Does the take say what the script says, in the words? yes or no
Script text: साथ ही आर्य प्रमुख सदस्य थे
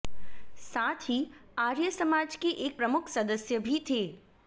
no